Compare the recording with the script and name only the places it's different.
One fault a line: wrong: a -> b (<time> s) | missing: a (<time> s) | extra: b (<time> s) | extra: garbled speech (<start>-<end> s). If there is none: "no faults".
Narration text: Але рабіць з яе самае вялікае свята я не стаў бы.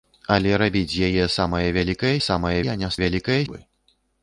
wrong: свята -> самае (2.2 s)
wrong: стаў -> вялікае (3.0 s)